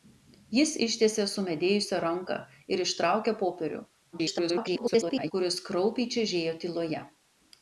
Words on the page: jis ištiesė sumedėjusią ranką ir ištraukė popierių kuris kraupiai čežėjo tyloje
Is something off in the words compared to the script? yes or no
yes